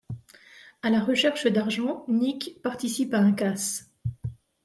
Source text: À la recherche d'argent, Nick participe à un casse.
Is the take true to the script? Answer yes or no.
yes